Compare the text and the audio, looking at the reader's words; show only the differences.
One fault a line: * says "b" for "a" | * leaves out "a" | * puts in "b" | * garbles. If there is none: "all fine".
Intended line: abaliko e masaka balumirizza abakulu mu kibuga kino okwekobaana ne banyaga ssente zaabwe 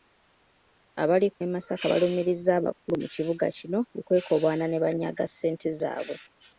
all fine